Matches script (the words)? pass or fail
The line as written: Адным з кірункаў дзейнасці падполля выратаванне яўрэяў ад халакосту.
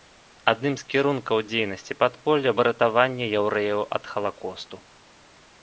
pass